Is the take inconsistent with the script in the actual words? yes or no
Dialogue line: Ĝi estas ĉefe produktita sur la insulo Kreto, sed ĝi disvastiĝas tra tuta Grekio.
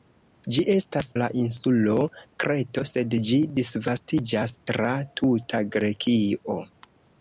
yes